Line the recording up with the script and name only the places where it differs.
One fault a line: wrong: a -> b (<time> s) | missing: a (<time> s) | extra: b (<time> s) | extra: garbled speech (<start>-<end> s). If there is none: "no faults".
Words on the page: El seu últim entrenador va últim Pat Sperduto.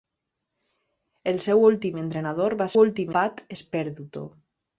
no faults